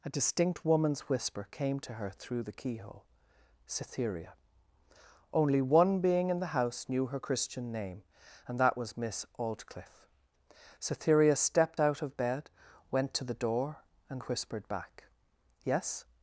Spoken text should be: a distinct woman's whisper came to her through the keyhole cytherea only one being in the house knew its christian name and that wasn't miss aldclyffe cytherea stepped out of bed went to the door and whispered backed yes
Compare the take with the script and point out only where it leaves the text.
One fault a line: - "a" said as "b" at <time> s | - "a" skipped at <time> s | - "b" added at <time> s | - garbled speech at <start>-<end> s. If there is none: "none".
- "its" said as "her" at 7.1 s
- "wasn't" said as "was" at 8.8 s
- "backed" said as "back" at 14.7 s